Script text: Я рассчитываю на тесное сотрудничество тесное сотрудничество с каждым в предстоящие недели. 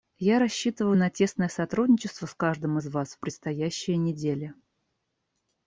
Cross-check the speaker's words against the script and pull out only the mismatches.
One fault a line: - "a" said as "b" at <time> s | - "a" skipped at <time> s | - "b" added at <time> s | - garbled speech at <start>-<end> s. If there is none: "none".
- "тесное сотрудничество с каждым" said as "с каждым из вас" at 2.3 s